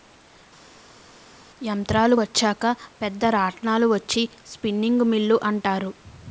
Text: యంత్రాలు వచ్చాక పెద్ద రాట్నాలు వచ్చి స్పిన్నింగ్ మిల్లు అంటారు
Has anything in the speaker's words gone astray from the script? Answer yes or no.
no